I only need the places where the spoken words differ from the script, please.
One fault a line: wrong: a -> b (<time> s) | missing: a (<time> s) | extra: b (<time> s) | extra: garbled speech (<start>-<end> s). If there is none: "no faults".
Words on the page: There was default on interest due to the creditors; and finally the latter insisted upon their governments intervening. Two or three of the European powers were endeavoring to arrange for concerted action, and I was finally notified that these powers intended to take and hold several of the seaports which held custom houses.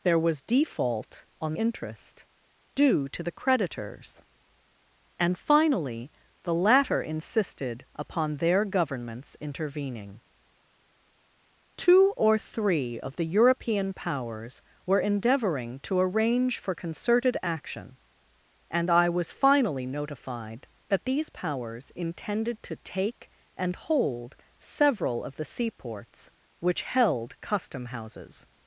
no faults